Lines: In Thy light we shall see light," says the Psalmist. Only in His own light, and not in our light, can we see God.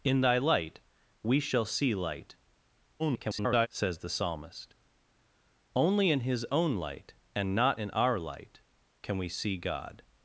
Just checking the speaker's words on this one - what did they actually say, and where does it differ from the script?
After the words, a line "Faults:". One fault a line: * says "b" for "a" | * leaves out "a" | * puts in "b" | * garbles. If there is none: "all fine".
In Thy light we shall see light," [garbled] says the Psalmist. Only in His own light, and not in our light, can we see God.
Faults:
* garbles